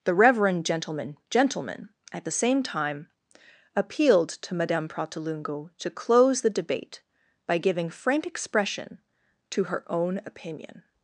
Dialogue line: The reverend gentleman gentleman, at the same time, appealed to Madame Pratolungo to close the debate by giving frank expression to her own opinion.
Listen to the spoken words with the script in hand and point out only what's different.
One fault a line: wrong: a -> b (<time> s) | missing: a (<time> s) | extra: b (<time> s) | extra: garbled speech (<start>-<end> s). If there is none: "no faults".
no faults